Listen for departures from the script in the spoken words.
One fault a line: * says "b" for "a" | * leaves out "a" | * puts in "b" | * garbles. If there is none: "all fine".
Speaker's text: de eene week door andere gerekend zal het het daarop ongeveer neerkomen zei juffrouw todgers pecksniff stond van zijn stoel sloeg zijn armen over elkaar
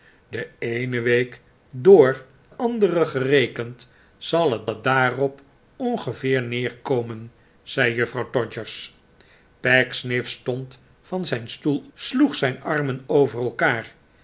all fine